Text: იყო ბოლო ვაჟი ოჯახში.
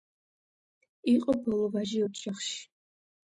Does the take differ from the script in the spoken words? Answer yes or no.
no